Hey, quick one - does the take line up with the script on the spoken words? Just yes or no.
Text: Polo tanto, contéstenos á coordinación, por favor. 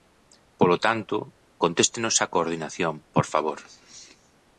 yes